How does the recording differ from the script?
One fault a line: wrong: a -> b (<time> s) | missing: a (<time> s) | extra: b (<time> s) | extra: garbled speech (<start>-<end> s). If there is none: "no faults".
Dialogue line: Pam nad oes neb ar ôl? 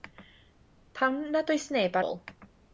missing: ar (2.0 s)